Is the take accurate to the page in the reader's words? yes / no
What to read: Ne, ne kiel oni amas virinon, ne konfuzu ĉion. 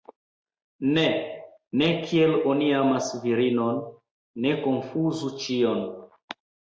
yes